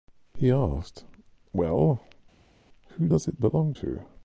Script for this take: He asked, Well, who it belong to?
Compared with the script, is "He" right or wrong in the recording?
right